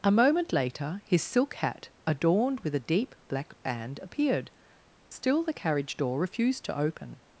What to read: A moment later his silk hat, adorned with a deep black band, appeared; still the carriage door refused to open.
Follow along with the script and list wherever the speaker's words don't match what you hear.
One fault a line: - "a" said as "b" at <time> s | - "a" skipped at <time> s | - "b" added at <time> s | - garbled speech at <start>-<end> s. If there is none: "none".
none